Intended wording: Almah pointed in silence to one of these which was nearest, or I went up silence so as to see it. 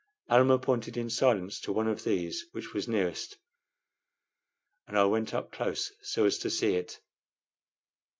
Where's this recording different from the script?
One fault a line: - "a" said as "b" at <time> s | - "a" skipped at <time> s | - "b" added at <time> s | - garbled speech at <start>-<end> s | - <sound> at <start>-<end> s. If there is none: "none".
- "or" said as "and" at 4.9 s
- "silence" said as "close" at 5.5 s